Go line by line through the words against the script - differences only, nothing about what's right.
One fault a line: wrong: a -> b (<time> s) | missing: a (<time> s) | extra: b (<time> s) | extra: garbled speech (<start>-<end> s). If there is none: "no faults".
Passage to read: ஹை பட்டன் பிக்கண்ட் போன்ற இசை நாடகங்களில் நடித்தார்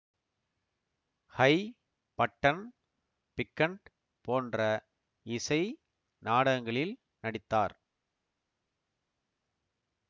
no faults